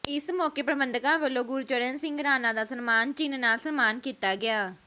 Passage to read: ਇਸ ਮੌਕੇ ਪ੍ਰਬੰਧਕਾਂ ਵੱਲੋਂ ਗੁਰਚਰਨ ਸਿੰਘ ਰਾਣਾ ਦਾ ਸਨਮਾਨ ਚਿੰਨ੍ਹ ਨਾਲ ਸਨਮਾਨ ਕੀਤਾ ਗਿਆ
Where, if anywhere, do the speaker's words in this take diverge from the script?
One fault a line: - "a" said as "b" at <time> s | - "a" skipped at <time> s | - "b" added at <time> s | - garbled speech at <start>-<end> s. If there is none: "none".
none